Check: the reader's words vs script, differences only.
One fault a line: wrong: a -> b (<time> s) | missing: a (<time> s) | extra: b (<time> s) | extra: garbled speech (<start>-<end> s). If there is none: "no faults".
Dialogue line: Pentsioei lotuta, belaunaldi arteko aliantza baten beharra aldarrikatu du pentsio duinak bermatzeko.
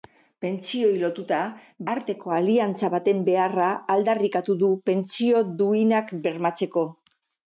missing: belaunaldi (1.4 s)